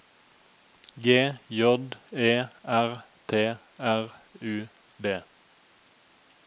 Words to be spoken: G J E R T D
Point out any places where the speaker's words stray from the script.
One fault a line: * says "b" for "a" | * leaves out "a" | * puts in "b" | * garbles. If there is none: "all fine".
* puts in "R U"